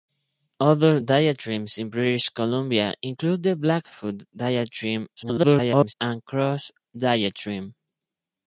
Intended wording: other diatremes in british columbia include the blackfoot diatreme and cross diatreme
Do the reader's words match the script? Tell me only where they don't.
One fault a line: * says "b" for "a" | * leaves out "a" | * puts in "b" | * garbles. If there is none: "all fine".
* garbles